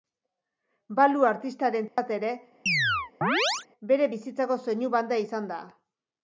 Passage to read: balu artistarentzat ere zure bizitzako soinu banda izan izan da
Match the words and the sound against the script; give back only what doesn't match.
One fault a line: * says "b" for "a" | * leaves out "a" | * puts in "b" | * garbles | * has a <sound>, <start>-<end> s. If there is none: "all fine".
* has a dropout, 1.9-2.0 s
* has a chirp, 2.7-3.7 s
* says "bere" for "zure"
* leaves out "izan"